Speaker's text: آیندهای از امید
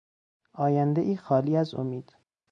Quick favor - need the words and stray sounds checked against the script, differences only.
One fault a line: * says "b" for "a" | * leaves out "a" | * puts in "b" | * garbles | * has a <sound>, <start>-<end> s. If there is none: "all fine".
* puts in "خالی"